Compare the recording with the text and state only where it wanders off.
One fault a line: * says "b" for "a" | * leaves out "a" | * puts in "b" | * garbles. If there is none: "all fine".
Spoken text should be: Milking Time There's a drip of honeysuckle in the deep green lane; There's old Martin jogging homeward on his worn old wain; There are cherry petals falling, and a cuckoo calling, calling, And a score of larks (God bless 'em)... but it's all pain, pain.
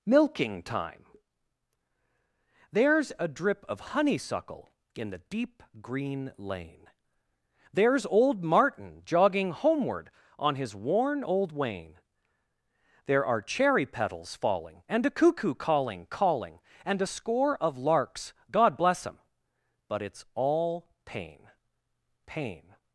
all fine